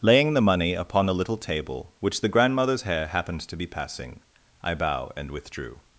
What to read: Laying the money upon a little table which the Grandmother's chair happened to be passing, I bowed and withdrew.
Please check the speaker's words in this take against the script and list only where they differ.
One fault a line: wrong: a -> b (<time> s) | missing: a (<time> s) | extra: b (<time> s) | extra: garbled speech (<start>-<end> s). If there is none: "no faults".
wrong: chair -> hair (2.8 s)
wrong: bowed -> bow (4.7 s)